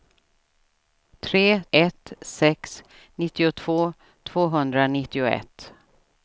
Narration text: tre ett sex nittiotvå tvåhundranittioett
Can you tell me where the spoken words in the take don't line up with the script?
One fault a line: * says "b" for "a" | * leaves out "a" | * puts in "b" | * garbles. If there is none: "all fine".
all fine